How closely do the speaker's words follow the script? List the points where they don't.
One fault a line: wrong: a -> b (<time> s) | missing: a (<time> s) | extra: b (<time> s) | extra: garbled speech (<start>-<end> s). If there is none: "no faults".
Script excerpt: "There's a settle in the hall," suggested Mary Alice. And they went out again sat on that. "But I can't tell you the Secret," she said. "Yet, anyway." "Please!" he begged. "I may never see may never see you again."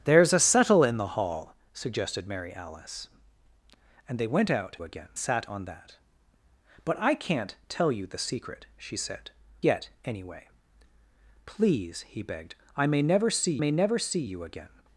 no faults